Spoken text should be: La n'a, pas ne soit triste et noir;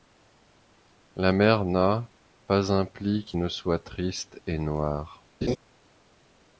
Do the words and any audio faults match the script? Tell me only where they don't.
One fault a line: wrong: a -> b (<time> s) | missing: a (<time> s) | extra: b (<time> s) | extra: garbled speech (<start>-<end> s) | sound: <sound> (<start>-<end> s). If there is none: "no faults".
extra: mer (1.3 s)
extra: un pli qui (2.7 s)
sound: laugh (5.4-5.6 s)